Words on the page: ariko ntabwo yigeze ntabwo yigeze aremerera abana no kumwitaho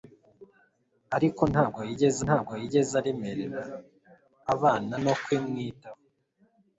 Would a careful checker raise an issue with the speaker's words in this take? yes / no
no